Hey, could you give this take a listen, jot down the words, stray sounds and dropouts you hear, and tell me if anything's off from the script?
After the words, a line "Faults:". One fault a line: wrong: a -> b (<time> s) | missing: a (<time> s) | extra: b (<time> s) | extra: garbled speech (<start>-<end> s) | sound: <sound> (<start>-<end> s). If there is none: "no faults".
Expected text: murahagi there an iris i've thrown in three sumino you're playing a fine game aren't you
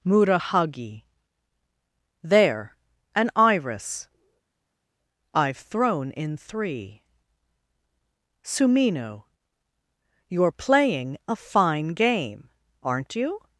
murahagi there an iris i've thrown in three sumino you're playing a fine game aren't you
Faults:
no faults